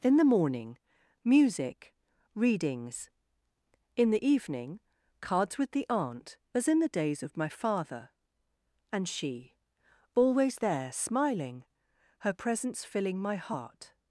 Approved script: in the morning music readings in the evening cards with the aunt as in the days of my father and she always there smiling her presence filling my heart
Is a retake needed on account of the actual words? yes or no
no